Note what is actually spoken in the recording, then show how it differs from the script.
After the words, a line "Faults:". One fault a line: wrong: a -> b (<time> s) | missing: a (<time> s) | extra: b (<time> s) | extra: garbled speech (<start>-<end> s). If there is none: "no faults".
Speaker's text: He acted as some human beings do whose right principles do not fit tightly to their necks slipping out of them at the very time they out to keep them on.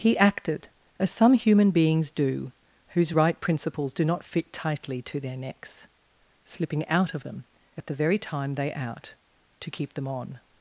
He acted as some human beings do whose right principles do not fit tightly to their necks slipping out of them at the very time they out to keep them on.
Faults:
no faults